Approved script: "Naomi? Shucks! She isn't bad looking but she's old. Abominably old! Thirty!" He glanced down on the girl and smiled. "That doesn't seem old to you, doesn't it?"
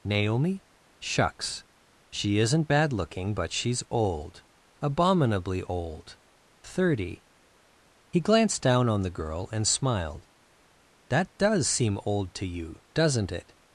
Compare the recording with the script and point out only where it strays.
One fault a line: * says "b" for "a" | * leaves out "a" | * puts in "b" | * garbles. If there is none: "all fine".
* says "does" for "doesn't"